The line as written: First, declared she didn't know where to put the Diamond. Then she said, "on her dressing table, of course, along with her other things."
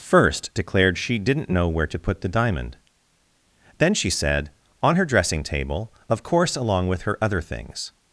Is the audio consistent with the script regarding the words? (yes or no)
yes